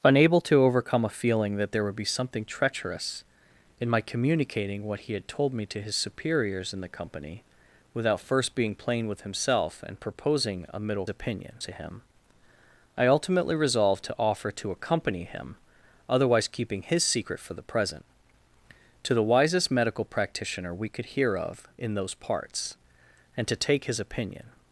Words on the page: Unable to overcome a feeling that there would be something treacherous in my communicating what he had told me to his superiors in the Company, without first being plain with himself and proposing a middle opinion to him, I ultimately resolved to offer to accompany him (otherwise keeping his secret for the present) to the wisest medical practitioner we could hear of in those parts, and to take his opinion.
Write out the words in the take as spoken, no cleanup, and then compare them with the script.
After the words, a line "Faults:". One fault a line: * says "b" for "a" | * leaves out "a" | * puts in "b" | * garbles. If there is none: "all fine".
Unable to overcome a feeling that there would be something treacherous in my communicating what he had told me to his superiors in the Company, without first being plain with himself and proposing a middle opinion to him, I ultimately resolved to offer to accompany him (otherwise keeping his secret for the present) to the wisest medical practitioner we could hear of in those parts, and to take his opinion.
Faults:
all fine